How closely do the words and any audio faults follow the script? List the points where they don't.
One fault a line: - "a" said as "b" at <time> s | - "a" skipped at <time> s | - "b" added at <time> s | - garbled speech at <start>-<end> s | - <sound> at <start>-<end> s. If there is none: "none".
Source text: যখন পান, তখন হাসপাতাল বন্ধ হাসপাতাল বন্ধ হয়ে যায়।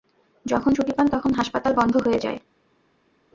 - "ছুটি" added at 0.7 s
- "হাসপাতাল বন্ধ" skipped at 1.9 s